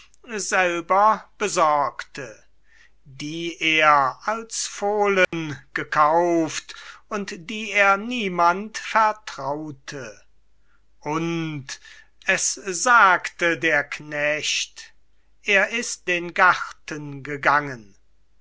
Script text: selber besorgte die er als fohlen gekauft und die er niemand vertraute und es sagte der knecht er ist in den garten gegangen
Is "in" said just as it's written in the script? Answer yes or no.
no